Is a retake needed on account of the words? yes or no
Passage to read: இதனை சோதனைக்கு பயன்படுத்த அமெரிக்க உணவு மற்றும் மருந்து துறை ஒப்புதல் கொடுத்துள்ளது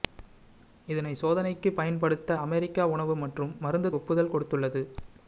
yes